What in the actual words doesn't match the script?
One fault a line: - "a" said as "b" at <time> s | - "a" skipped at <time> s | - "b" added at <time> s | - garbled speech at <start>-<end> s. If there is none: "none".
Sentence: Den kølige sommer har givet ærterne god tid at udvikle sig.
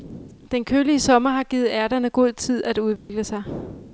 none